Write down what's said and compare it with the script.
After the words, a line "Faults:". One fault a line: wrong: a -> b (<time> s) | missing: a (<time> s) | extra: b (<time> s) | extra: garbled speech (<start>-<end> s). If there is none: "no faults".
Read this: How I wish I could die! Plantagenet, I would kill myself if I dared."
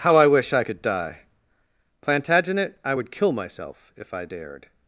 How I wish I could die! Plantagenet, I would kill myself if I dared."
Faults:
no faults